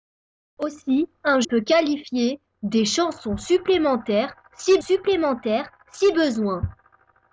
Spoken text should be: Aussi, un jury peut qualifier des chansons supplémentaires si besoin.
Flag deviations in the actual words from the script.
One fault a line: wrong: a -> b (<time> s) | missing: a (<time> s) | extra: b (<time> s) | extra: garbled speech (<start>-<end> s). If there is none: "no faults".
missing: jury (1.4 s)
extra: supplémentaires si (4.8 s)